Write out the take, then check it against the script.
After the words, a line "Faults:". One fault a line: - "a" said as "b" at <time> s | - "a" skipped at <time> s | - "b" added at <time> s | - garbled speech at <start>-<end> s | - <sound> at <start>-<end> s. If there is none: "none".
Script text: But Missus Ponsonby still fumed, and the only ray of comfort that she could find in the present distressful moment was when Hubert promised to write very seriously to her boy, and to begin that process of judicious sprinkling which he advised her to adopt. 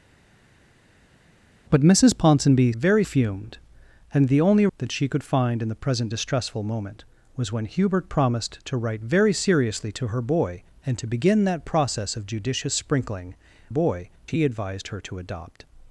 But Missus Ponsonby very fumed, and the only that she could find in the present distressful moment was when Hubert promised to write very seriously to her boy, and to begin that process of judicious sprinkling boy he advised her to adopt.
Faults:
- "still" said as "very" at 2.8 s
- "ray of comfort" skipped at 4.7 s
- "which" said as "boy" at 13.7 s